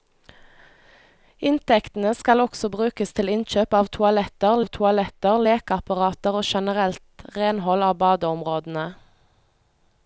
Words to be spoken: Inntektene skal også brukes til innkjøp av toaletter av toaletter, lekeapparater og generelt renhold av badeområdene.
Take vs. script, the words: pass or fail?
pass